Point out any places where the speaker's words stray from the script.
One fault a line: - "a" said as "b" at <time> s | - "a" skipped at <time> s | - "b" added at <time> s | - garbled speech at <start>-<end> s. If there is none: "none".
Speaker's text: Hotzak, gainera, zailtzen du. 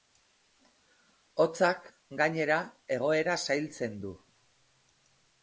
- "egoera" added at 3.0 s